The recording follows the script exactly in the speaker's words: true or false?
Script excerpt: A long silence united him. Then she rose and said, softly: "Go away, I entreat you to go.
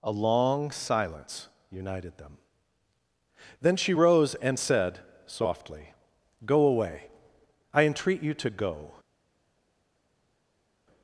false